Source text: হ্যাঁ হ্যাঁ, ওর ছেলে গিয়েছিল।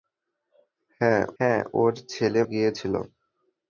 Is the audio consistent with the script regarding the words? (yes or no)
yes